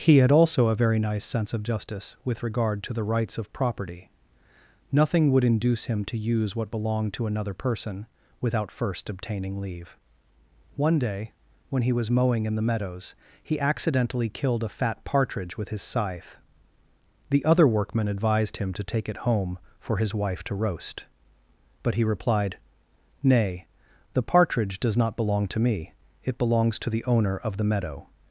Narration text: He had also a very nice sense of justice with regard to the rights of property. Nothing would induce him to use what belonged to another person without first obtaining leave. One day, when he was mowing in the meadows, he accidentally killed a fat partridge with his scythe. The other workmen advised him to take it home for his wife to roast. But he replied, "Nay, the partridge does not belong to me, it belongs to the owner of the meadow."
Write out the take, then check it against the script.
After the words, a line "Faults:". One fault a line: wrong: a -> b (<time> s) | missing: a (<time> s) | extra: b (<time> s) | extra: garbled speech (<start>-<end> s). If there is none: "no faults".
He had also a very nice sense of justice with regard to the rights of property. Nothing would induce him to use what belonged to another person without first obtaining leave. One day, when he was mowing in the meadows, he accidentally killed a fat partridge with his scythe. The other workmen advised him to take it home for his wife to roast. But he replied, "Nay, the partridge does not belong to me, it belongs to the owner of the meadow."
Faults:
no faults